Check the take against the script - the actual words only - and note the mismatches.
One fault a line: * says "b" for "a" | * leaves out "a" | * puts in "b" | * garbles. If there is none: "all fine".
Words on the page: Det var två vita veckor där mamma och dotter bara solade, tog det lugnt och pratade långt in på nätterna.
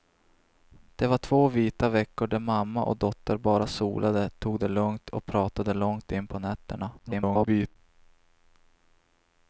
* garbles